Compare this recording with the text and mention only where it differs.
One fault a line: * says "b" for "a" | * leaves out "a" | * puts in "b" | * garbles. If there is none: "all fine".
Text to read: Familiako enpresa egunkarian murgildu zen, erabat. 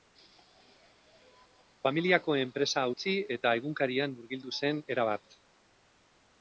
* puts in "utzi eta"